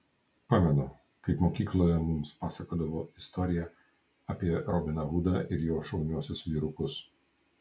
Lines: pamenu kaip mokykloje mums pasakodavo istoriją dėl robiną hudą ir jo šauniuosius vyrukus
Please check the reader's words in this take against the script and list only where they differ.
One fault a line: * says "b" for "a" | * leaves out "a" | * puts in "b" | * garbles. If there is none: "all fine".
* says "apie" for "dėl"